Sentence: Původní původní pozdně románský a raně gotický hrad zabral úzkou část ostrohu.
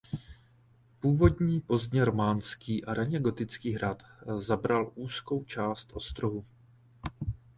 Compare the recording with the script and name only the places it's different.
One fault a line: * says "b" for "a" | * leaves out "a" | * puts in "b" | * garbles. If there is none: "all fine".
* leaves out "původní"